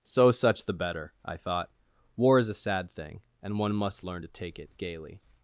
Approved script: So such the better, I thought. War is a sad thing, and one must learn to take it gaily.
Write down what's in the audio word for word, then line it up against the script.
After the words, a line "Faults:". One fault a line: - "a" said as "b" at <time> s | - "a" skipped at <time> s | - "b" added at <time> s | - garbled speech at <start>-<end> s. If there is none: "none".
So such the better, I thought. War is a sad thing, and one must learn to take it gaily.
Faults:
none